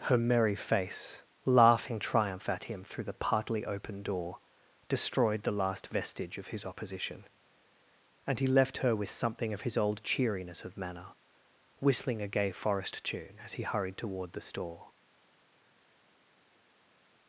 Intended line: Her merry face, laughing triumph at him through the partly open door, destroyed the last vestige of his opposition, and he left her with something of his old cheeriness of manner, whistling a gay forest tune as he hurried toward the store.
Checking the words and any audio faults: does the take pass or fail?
pass